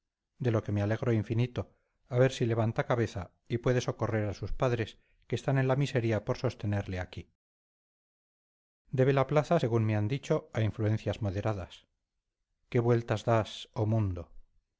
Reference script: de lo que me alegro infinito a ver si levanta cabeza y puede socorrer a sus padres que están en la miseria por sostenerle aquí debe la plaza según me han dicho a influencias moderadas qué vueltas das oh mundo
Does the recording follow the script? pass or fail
pass